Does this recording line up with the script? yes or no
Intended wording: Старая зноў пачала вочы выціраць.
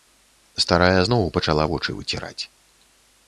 yes